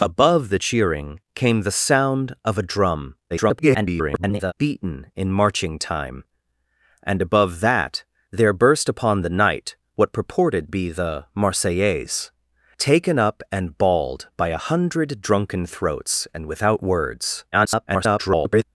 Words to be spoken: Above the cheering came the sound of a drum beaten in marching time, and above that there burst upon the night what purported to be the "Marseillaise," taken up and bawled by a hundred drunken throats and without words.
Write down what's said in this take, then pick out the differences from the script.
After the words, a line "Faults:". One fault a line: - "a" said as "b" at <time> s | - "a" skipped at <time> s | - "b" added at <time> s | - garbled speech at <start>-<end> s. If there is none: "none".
Above the cheering came the sound of a drum [garbled] beaten in marching time, and above that there burst upon the night what purported be the "Marseillaise," taken up and bawled by a hundred drunken throats and without words. [garbled]
Faults:
- garbled speech at 3.3-4.5 s
- "to" skipped at 10.7 s
- garbled speech at 17.5-18.6 s